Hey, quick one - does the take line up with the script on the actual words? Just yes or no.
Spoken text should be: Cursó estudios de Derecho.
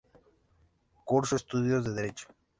yes